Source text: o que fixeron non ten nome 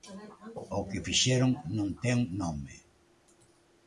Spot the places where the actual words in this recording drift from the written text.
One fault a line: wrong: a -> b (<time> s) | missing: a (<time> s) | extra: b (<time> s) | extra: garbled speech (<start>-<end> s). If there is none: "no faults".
no faults